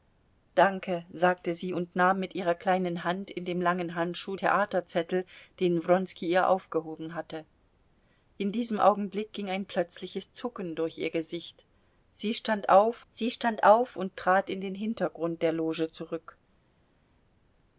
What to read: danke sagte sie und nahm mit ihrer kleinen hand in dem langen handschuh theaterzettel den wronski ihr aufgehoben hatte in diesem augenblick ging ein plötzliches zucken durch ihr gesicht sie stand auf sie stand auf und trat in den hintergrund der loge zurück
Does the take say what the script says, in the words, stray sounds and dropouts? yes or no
yes